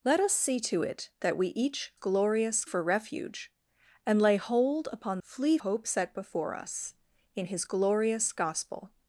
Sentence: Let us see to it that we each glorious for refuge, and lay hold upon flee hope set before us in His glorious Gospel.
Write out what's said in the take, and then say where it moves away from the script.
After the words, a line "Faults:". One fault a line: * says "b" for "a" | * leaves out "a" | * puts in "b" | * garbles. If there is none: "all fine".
Let us see to it that we each glorious for refuge, and lay hold upon flee hope set before us in His glorious Gospel.
Faults:
all fine